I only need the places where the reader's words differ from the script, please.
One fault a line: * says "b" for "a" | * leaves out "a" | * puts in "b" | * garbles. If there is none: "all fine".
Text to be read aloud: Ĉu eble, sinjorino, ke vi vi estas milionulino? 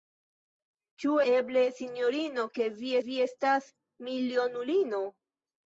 all fine